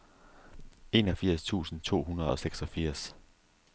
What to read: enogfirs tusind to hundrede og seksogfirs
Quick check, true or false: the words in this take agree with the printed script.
true